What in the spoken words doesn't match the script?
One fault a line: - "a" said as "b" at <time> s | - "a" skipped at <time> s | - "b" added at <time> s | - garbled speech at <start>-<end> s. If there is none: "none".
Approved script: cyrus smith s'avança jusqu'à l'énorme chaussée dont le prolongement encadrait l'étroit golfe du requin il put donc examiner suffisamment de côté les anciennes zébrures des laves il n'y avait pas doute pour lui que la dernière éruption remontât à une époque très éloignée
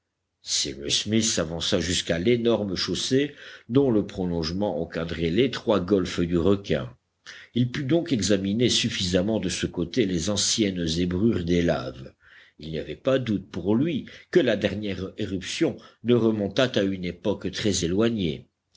- "ce" added at 9.5 s
- "ne" added at 16.0 s